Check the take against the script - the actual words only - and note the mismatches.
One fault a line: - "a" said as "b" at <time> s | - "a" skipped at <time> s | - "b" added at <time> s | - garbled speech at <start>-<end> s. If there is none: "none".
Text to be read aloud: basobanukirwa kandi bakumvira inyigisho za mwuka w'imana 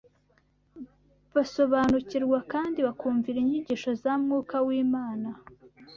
none